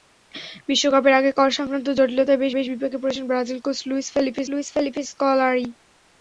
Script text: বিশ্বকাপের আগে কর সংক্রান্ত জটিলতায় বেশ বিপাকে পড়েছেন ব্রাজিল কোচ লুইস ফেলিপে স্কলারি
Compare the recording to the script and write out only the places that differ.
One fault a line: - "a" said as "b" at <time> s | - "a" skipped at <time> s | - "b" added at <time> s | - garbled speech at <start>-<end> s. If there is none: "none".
- "বেশ" added at 2.5 s
- "লুইস ফেলিপে" added at 4.5 s